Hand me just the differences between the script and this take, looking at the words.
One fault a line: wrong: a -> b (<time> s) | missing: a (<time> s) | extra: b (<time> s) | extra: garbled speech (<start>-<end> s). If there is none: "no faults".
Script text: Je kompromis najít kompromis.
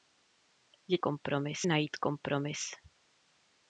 no faults